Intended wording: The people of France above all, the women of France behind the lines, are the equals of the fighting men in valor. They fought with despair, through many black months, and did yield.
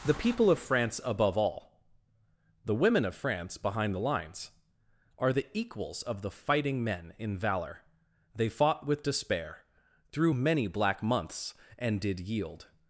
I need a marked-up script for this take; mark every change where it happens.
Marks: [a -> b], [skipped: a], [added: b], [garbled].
The people of France above all, the women of France behind the lines, are the equals of the fighting men in valor. They fought with despair, through many black months, and did yield.